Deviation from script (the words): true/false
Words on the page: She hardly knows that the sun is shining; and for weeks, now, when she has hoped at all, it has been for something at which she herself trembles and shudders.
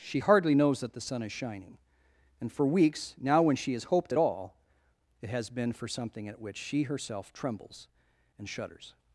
false